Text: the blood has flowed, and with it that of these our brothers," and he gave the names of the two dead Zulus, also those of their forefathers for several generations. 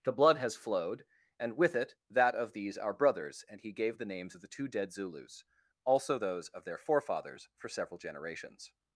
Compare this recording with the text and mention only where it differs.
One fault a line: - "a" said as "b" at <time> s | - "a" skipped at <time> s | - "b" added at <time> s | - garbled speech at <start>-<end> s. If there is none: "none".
none